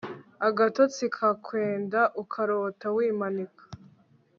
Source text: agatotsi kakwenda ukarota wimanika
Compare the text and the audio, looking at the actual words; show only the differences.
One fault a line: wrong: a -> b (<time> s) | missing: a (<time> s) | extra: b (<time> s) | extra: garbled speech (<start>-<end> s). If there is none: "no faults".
no faults